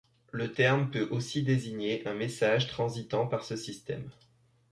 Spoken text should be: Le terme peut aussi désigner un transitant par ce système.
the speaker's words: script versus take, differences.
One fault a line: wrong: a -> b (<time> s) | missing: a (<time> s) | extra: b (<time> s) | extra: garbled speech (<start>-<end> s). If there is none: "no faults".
extra: message (2.1 s)